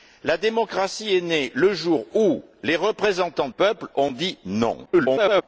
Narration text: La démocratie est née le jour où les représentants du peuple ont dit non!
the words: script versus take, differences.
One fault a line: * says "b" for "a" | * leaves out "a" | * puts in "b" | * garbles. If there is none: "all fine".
* leaves out "du"
* garbles